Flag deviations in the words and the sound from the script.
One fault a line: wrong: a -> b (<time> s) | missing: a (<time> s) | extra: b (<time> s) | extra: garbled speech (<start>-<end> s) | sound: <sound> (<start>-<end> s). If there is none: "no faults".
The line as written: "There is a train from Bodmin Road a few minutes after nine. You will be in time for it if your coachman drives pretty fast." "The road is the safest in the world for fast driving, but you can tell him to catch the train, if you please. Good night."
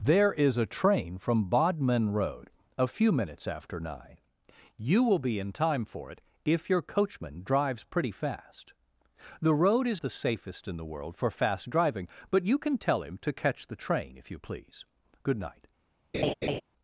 sound: laugh (16.1-16.6 s)